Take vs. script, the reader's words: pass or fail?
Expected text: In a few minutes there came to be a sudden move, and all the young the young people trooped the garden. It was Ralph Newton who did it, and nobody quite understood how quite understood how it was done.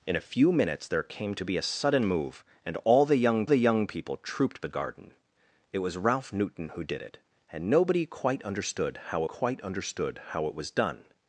pass